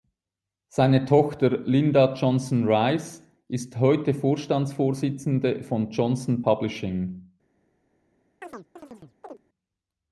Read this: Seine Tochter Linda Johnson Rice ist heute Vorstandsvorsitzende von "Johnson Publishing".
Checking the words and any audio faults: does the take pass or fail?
fail